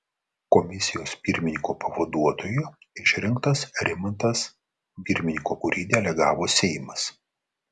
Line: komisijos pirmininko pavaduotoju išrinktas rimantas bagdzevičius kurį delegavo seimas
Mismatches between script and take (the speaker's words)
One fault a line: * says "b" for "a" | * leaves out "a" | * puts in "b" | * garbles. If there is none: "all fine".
* says "pirmininko" for "bagdzevičius"